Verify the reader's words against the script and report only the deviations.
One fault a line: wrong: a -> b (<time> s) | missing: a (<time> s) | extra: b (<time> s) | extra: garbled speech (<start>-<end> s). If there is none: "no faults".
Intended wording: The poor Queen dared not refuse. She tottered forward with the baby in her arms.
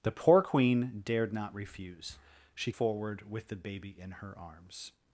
missing: tottered (2.7 s)